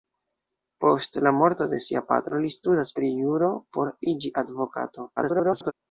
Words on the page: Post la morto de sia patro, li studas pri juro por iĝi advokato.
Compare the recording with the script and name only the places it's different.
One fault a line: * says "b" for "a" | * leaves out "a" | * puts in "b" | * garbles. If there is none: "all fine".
* garbles